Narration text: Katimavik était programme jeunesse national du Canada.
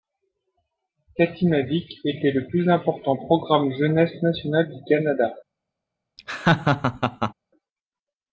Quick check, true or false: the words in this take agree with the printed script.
false